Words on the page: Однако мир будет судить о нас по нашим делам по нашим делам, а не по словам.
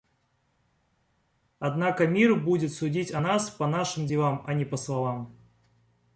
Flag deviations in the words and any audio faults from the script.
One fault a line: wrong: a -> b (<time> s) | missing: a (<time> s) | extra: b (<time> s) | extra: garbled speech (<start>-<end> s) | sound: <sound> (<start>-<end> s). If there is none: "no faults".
missing: по нашим делам (4.4 s)